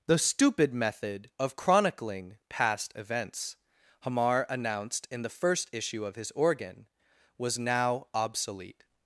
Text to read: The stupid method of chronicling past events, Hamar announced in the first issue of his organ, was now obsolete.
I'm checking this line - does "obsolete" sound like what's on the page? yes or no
yes